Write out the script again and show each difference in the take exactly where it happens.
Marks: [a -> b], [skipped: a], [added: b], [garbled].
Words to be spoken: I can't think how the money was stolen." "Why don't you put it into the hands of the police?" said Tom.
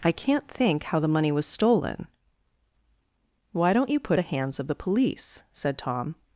I can't think how the money was stolen." "Why don't you put [skipped: it into] the hands of the police?" said Tom.